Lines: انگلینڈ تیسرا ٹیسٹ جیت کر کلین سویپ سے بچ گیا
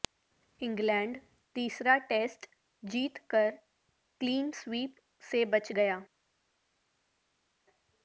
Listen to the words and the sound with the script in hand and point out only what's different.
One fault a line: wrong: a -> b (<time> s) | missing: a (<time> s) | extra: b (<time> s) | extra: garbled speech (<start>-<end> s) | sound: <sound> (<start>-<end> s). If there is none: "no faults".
no faults